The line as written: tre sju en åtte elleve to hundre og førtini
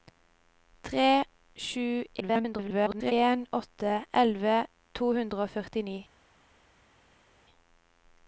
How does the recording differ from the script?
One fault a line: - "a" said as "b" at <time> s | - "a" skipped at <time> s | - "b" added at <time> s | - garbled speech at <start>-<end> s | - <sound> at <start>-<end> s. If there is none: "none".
- garbled speech at 2.2-3.1 s